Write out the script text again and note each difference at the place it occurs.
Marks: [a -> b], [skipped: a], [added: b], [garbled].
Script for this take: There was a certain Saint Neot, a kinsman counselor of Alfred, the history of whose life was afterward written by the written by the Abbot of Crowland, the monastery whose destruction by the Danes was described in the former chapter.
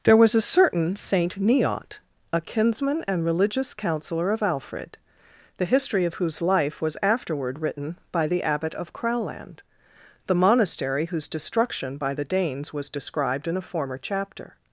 There was a certain Saint Neot, a kinsman [added: and religious] counselor of Alfred, the history of whose life was afterward written by the [skipped: written by the] Abbot of Crowland, the monastery whose destruction by the Danes was described in [the -> a] former chapter.